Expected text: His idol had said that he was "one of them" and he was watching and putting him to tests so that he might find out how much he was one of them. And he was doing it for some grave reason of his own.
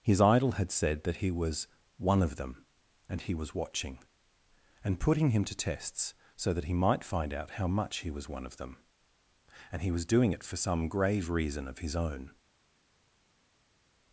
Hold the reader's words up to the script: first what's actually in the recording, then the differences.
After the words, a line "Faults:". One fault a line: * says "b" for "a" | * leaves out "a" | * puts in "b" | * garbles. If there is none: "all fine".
His idol had said that he was "one of them" and he was watching and putting him to tests so that he might find out how much he was one of them. And he was doing it for some grave reason of his own.
Faults:
all fine